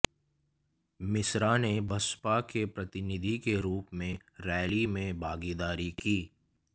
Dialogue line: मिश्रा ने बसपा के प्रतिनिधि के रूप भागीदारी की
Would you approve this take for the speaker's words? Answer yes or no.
no